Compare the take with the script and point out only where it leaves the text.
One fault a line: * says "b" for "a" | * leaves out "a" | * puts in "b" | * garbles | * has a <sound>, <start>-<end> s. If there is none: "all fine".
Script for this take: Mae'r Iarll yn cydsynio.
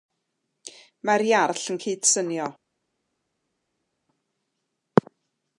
all fine